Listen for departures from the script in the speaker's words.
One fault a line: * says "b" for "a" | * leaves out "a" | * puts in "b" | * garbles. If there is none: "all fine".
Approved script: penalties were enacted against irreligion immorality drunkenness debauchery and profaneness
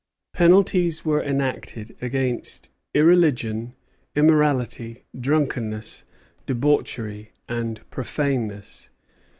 all fine